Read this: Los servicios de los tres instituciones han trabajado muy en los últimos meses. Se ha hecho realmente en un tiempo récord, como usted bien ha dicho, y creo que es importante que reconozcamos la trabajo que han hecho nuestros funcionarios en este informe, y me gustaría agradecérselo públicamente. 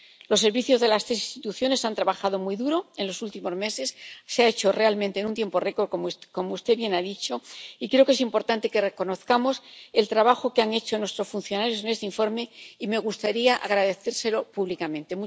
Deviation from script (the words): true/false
true